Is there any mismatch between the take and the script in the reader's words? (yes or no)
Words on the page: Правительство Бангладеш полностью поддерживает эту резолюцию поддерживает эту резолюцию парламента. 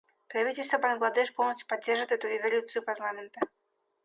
yes